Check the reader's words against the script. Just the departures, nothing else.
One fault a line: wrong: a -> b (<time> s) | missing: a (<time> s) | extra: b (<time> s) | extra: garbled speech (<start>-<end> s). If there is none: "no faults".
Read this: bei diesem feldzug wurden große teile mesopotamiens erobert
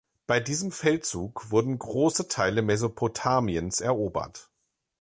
no faults